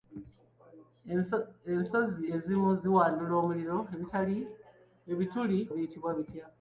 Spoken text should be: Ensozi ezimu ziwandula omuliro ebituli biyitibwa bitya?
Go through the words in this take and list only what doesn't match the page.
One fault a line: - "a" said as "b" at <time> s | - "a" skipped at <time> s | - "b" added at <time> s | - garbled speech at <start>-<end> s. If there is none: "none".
none